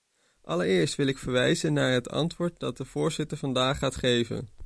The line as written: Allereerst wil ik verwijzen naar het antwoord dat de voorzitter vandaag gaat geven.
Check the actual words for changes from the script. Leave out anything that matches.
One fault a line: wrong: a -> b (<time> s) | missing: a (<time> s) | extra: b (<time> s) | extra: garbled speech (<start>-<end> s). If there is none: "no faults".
no faults